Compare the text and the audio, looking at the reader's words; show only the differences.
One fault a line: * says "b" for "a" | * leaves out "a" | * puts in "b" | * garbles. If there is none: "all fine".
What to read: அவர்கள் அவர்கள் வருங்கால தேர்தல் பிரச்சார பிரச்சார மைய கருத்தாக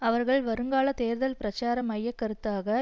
* leaves out "அவர்கள்"
* leaves out "பிரச்சார"